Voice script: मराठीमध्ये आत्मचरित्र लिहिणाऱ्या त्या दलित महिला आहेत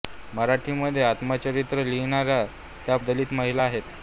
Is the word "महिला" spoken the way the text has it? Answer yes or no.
yes